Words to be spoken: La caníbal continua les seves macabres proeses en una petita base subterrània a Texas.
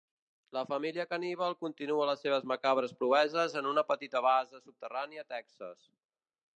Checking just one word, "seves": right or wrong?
right